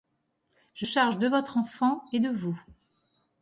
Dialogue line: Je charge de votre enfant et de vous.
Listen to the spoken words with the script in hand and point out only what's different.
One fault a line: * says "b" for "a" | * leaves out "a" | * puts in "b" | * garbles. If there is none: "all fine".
all fine